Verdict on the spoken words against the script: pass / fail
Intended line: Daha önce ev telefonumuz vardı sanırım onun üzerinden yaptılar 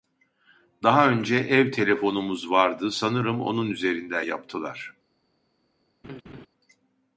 pass